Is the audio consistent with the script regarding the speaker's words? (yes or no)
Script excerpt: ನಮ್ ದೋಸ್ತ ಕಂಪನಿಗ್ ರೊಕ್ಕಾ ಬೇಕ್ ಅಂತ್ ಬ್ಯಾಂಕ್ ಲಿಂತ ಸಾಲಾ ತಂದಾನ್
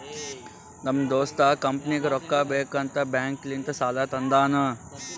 yes